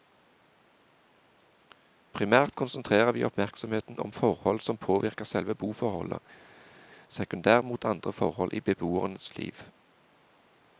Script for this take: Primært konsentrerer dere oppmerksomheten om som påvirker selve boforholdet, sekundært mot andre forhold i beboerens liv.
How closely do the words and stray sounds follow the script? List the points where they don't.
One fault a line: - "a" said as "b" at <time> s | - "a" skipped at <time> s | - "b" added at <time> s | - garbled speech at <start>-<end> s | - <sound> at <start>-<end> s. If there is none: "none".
- "dere" said as "vi" at 3.1 s
- "forhold" added at 4.1 s